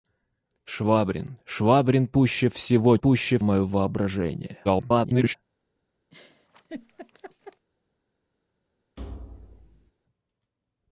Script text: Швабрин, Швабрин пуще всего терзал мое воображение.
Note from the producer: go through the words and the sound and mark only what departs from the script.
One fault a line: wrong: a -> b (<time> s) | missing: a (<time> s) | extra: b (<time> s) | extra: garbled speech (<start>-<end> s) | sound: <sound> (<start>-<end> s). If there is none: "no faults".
wrong: терзал -> пуще (3.0 s)
extra: garbled speech (4.6-5.4 s)
sound: laugh (6.1-7.7 s)
sound: thud (9.0-9.9 s)